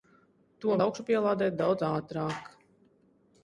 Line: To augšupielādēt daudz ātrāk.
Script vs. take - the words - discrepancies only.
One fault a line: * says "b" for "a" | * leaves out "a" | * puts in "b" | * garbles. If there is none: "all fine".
all fine